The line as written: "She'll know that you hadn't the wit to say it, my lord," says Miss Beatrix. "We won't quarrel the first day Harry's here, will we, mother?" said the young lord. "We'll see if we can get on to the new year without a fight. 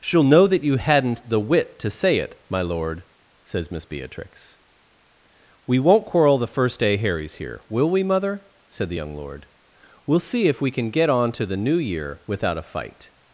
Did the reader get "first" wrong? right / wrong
right